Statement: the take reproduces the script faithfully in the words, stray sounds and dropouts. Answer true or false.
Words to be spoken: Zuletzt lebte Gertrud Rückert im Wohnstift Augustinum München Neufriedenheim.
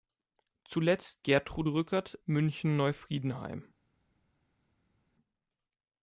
false